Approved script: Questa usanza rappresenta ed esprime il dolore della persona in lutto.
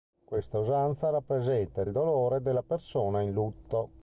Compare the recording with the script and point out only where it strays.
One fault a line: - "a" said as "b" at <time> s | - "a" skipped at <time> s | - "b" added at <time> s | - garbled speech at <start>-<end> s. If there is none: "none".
- "esprime" skipped at 1.9 s